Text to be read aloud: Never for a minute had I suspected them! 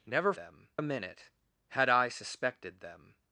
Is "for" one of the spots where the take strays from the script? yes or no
yes